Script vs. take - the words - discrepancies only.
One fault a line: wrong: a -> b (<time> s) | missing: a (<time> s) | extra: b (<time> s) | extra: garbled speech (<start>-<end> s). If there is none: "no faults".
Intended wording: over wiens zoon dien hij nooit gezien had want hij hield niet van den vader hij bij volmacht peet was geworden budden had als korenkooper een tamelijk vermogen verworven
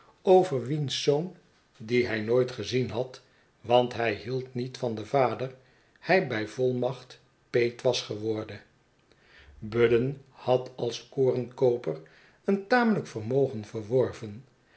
no faults